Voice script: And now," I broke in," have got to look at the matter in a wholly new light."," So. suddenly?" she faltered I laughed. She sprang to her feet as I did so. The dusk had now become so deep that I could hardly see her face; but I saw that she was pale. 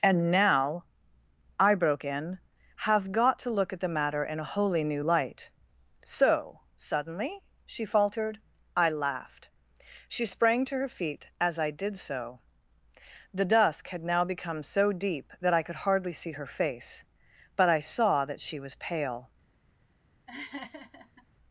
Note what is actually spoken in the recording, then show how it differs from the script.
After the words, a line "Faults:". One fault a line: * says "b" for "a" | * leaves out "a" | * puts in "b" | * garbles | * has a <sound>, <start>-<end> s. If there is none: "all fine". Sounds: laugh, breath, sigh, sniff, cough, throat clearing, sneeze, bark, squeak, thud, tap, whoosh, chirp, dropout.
And now," I broke in," have got to look at the matter in a wholly new light."," So. suddenly?" she faltered I laughed. She sprang to her feet as I did so. The dusk had now become so deep that I could hardly see her face; but I saw that she was pale.
Faults:
* has a laugh, 20.3-21.3 s